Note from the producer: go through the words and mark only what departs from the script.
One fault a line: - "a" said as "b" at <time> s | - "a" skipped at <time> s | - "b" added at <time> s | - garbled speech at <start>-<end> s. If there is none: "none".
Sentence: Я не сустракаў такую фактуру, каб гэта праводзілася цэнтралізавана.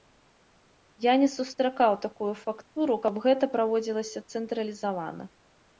none